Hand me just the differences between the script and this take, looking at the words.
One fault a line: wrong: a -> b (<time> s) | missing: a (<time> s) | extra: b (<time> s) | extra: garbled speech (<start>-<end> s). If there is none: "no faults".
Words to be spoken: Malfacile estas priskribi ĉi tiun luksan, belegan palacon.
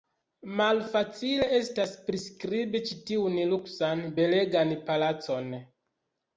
no faults